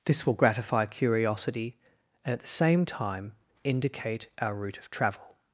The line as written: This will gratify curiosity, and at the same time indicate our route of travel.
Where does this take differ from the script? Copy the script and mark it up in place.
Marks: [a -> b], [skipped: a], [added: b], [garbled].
This will gratify curiosity, and at the same time indicate our route of travel.